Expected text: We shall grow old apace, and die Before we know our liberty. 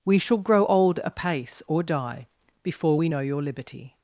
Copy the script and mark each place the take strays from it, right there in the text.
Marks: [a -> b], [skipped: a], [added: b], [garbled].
We shall grow old apace, [and -> or] die Before we know [our -> your] liberty.